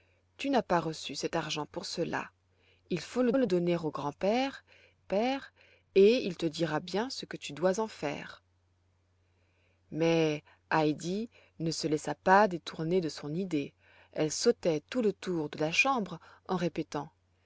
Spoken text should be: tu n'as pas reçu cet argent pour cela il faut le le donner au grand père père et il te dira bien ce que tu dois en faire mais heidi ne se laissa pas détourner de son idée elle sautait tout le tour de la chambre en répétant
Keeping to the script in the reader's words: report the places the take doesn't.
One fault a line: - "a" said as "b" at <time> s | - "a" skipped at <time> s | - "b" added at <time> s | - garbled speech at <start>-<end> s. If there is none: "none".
none